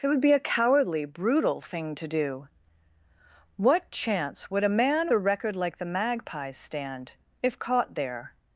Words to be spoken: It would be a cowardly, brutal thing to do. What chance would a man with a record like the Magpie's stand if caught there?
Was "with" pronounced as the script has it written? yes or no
no